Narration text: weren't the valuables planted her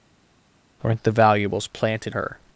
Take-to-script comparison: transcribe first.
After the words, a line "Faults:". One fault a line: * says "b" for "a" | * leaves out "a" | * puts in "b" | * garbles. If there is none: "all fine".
weren't the valuables planted her
Faults:
all fine